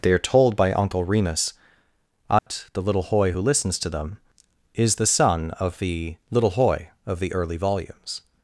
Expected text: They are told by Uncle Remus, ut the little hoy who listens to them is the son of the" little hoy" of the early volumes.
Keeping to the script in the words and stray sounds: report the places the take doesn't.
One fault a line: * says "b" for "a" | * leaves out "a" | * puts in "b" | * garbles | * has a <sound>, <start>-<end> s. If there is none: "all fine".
* has a dropout, 2.4-2.5 s